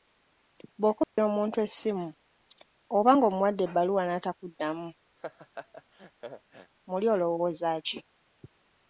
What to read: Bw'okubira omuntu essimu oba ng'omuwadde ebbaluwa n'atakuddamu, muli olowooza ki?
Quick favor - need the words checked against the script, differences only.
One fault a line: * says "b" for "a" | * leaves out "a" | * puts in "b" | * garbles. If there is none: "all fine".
all fine